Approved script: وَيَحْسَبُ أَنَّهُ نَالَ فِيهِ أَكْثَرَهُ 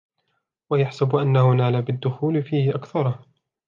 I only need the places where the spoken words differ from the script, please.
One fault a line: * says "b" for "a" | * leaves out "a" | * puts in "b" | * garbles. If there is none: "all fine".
* puts in "بِالدُّخُولِ"